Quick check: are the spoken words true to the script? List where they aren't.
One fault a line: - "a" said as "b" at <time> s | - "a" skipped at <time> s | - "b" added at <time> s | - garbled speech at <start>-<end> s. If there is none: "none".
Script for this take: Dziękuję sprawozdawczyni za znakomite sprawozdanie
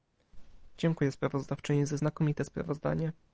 none